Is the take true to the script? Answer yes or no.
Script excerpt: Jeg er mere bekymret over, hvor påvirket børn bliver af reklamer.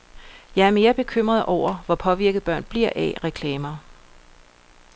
yes